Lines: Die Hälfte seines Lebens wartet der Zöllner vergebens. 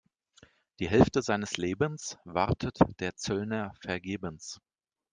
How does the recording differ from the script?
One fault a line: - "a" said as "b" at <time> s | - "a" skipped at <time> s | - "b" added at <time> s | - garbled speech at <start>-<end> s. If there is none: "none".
none